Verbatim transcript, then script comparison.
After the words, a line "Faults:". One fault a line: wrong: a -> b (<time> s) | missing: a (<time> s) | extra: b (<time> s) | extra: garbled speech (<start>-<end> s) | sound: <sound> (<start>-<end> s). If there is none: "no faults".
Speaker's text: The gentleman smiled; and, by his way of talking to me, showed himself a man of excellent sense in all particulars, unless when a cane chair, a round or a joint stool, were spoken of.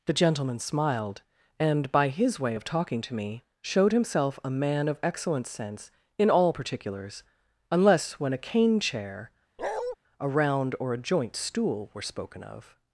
The gentleman smiled; and, by his way of talking to me, showed himself a man of excellent sense in all particulars, unless when a cane chair, a round or a joint stool, were spoken of.
Faults:
sound: bark (9.6-10.0 s)